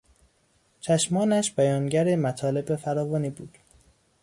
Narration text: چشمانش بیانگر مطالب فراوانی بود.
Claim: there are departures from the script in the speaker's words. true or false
false